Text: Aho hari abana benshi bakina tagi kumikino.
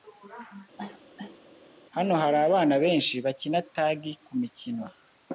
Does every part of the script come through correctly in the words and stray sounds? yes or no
no